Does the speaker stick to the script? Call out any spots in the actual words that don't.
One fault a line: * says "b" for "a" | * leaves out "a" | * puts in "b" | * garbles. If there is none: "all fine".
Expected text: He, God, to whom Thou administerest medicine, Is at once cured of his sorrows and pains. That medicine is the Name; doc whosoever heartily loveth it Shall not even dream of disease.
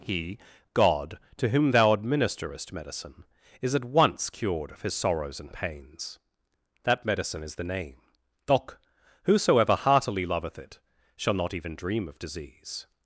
all fine